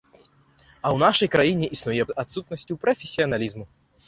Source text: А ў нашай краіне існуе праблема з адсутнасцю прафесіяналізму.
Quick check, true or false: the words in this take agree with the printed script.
false